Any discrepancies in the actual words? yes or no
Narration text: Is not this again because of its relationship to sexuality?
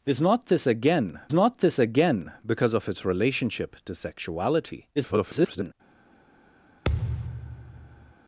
yes